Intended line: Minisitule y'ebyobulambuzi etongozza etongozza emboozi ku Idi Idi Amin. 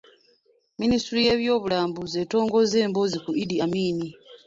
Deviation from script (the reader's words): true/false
true